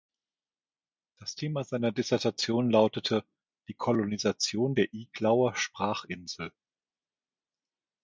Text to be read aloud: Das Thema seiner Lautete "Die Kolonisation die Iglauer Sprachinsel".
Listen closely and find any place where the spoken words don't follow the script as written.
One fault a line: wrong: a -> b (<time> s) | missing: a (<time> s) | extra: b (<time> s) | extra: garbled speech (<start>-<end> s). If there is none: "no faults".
extra: Dissertation (1.9 s)
wrong: die -> der (4.7 s)